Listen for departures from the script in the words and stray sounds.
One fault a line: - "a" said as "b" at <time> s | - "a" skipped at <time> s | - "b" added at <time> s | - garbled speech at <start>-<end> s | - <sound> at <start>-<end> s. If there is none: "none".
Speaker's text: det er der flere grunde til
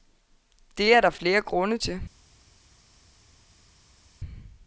none